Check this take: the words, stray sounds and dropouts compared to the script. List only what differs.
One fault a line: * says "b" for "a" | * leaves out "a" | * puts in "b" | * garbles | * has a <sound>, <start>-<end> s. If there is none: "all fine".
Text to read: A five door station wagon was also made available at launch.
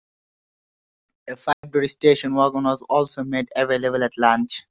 * has a dropout, 1.5-1.6 s